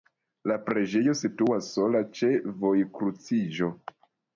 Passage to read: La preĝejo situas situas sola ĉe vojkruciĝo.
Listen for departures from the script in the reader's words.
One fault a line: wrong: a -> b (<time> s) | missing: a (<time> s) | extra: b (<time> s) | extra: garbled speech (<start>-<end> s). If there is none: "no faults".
missing: situas (1.7 s)